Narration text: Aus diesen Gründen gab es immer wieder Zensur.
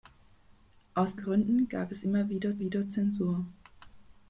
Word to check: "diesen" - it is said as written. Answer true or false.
false